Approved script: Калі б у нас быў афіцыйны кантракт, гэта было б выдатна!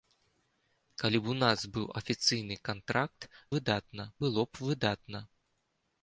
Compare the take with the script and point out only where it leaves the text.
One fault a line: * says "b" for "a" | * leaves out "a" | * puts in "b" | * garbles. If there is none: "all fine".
* says "выдатна" for "гэта"